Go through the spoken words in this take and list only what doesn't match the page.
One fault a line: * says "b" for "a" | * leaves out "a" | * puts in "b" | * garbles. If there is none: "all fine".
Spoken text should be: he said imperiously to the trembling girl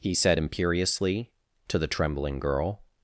all fine